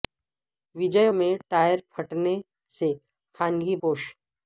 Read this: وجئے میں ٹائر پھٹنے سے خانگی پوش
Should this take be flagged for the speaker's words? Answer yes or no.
no